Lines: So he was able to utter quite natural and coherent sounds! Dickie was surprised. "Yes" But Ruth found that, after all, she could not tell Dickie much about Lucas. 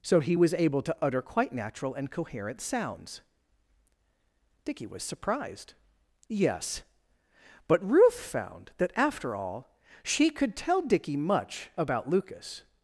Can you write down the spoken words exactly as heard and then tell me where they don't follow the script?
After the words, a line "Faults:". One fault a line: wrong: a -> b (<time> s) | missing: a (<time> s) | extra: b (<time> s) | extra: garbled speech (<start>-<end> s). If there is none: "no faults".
So he was able to utter quite natural and coherent sounds! Dickie was surprised. "Yes" But Ruth found that, after all, she could tell Dickie much about Lucas.
Faults:
missing: not (10.6 s)